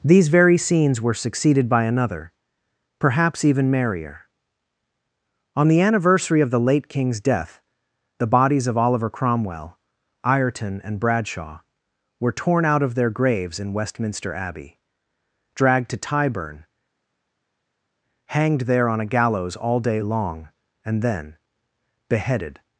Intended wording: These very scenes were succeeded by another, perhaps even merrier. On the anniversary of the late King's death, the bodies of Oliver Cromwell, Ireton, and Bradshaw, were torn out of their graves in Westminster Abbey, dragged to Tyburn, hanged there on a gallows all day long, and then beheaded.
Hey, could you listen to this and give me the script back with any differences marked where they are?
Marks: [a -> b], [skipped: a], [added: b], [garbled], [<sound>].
These very scenes were succeeded by another, perhaps even merrier. On the anniversary of the late King's death, the bodies of Oliver Cromwell, Ireton, and Bradshaw, were torn out of their graves in Westminster Abbey, dragged to Tyburn, hanged there on a gallows all day long, and then beheaded.